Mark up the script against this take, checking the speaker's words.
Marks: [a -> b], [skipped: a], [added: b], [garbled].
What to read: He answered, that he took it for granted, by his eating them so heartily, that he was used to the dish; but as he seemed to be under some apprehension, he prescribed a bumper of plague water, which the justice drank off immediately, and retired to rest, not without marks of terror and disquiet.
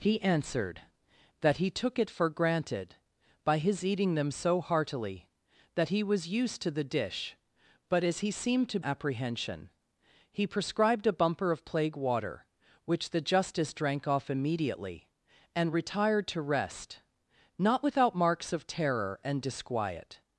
He answered, that he took it for granted, by his eating them so heartily, that he was used to the dish; but as he seemed to [skipped: be under some] apprehension, he prescribed a bumper of plague water, which the justice drank off immediately, and retired to rest, not without marks of terror and disquiet.